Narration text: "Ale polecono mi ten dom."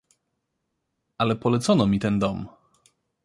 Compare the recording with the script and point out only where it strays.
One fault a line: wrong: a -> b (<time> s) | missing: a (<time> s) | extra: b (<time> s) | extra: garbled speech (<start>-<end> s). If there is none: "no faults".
no faults